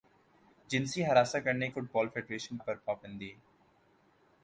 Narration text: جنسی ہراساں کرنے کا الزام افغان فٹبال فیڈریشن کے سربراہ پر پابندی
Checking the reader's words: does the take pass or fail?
fail